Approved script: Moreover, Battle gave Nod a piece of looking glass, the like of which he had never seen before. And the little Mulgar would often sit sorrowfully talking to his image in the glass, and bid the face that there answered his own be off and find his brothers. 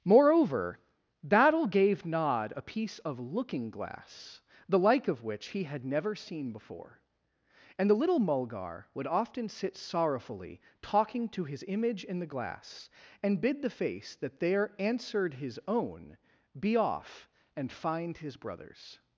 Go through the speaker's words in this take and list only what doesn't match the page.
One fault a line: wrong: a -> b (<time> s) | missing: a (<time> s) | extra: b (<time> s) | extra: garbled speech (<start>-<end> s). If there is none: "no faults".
no faults